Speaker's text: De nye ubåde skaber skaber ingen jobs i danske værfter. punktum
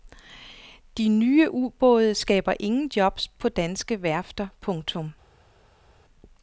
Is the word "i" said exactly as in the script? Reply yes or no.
no